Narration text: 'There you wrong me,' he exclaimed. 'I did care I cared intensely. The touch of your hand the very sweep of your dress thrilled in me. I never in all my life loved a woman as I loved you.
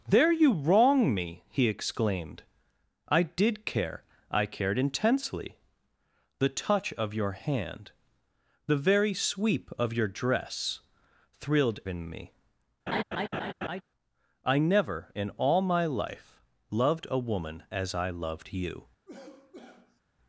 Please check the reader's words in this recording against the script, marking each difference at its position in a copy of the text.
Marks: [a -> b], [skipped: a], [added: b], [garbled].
'There you wrong me,' he exclaimed. 'I did care I cared intensely. The touch of your hand the very sweep of your dress thrilled in me. I never in all my life loved a woman as I loved you.